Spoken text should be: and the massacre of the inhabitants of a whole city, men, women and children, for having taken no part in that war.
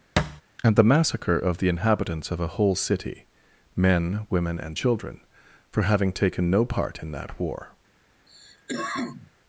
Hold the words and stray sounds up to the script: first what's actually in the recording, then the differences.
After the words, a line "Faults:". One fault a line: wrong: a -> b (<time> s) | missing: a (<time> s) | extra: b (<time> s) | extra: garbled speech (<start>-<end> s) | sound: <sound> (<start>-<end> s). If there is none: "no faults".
and the massacre of the inhabitants of a whole city, men, women and children, for having taken no part in that war.
Faults:
sound: thud (0.2-0.4 s)
sound: cough (8.3-9.3 s)